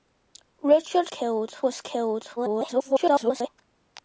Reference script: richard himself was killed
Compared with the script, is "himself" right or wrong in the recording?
wrong